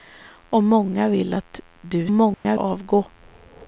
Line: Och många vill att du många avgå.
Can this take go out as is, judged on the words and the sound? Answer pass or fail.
fail